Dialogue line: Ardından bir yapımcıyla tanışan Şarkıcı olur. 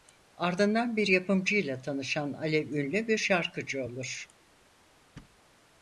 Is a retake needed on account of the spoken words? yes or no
yes